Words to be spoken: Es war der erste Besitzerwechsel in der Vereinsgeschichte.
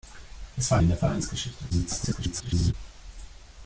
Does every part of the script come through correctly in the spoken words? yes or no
no